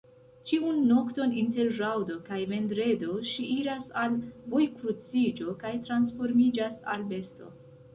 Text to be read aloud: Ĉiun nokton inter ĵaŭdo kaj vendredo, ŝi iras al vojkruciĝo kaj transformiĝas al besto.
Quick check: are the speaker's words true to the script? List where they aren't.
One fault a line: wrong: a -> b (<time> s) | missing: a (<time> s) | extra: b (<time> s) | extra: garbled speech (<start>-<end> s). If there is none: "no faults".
no faults